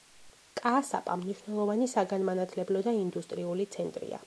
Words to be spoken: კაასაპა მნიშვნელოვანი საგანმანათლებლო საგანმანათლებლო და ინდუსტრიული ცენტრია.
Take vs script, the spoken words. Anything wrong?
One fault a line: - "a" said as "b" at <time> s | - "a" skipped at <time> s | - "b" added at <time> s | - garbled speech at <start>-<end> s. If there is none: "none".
- "საგანმანათლებლო" skipped at 2.8 s